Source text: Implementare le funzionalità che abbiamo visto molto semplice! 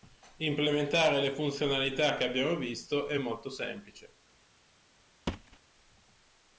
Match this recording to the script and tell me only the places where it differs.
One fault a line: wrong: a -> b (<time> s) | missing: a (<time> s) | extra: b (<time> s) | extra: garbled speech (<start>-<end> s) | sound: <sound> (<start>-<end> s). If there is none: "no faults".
extra: è (3.1 s)
sound: thud (5.3-5.6 s)